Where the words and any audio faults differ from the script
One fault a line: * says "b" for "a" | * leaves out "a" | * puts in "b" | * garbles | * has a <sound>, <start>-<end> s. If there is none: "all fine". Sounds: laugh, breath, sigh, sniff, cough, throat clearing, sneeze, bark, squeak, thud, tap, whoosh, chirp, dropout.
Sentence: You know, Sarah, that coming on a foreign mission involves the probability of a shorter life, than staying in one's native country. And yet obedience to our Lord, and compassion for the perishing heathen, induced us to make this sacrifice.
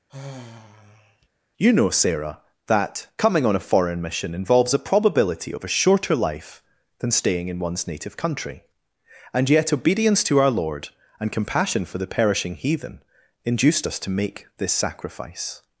* has a sigh, 0.1-1.3 s
* says "a" for "the"